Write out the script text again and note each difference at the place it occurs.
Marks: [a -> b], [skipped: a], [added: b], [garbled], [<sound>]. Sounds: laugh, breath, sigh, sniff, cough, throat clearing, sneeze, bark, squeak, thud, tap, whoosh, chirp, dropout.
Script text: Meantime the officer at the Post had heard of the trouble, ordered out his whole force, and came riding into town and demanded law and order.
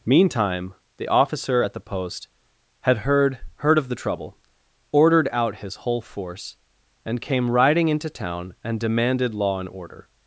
Meantime the officer at the Post had heard [added: heard] of the trouble, ordered out his whole force, and came riding into town and demanded law and order.